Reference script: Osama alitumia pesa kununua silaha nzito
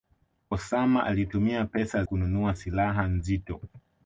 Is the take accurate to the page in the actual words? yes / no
yes